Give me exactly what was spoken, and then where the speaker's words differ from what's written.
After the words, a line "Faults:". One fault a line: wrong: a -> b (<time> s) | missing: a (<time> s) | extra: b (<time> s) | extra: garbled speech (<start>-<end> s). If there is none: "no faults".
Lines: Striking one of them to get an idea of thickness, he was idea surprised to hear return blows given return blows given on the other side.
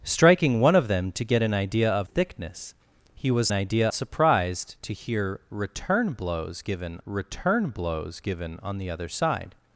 Striking one of them to get an idea of thickness, he was idea surprised to hear return blows given return blows given on the other side.
Faults:
no faults